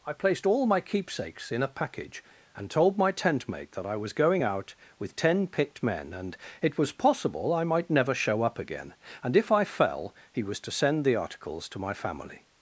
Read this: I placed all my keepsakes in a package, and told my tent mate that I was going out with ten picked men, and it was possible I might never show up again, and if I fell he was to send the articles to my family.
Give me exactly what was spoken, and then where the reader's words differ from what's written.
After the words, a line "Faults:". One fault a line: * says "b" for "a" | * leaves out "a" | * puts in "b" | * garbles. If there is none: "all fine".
I placed all my keepsakes in a package, and told my tent mate that I was going out with ten picked men, and it was possible I might never show up again, and if I fell he was to send the articles to my family.
Faults:
all fine